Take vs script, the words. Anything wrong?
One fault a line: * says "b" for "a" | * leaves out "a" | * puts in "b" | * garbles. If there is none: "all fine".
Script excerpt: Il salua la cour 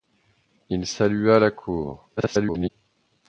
* garbles